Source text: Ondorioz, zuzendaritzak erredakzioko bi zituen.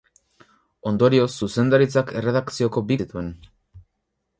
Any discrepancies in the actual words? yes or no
no